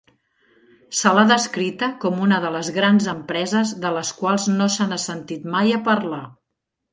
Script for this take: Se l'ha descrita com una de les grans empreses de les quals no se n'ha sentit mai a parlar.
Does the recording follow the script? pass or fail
pass